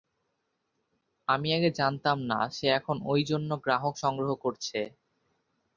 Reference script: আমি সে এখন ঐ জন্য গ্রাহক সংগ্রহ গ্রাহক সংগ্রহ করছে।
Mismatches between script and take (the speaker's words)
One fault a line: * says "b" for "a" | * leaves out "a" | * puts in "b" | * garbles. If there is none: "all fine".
* puts in "আগে জানতাম না"
* leaves out "গ্রাহক সংগ্রহ"